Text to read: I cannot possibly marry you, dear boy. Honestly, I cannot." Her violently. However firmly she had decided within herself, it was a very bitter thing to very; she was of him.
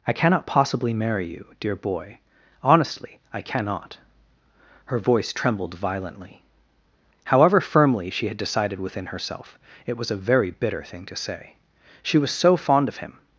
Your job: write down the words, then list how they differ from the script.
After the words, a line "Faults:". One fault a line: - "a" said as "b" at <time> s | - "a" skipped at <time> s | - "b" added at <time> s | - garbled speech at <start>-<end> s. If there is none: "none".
I cannot possibly marry you, dear boy. Honestly, I cannot." Her voice trembled violently. However firmly she had decided within herself, it was a very bitter thing to say; she was so fond of him.
Faults:
- "voice trembled" added at 5.0 s
- "very" said as "say" at 11.2 s
- "so fond" added at 12.3 s